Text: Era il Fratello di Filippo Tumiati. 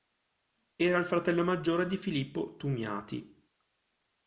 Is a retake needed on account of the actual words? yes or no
yes